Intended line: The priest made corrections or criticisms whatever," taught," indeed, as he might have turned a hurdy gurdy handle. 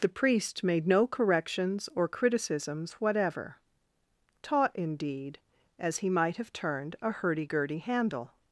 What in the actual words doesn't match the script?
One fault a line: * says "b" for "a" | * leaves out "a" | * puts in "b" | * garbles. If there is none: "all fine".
* puts in "no"